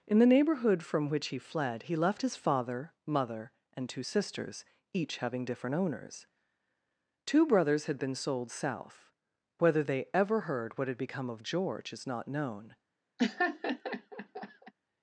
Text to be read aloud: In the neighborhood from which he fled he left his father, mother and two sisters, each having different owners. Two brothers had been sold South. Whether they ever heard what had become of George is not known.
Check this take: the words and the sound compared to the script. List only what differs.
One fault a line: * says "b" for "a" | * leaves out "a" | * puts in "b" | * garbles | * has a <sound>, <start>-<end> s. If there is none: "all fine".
* has a laugh, 13.2-14.7 s